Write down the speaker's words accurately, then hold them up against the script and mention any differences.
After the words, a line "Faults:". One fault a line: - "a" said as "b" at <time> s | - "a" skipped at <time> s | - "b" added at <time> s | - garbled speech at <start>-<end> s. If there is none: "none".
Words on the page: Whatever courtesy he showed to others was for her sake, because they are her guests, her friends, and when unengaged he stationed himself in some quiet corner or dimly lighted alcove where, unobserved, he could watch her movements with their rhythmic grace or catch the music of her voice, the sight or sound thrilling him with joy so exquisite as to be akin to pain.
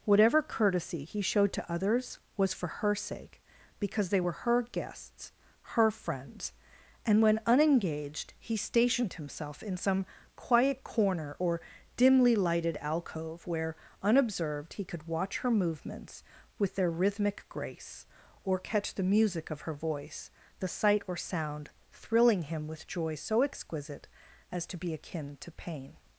Whatever courtesy he showed to others was for her sake, because they were her guests, her friends, and when unengaged he stationed himself in some quiet corner or dimly lighted alcove where, unobserved, he could watch her movements with their rhythmic grace or catch the music of her voice, the sight or sound thrilling him with joy so exquisite as to be akin to pain.
Faults:
- "are" said as "were" at 4.2 s